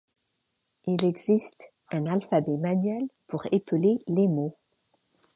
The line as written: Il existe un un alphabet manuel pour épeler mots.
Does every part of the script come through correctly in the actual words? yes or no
no